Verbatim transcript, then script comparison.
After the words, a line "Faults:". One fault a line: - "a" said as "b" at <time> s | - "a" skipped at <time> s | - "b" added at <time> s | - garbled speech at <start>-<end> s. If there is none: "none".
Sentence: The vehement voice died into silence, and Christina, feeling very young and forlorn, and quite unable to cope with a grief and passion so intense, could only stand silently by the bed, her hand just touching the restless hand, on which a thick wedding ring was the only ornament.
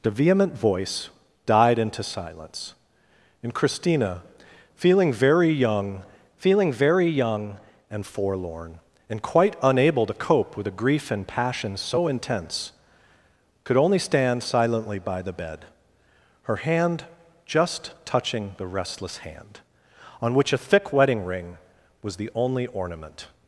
The vehement voice died into silence, and Christina, feeling very young feeling very young and forlorn, and quite unable to cope with a grief and passion so intense, could only stand silently by the bed, her hand just touching the restless hand, on which a thick wedding ring was the only ornament.
Faults:
- "feeling very young" added at 6.4 s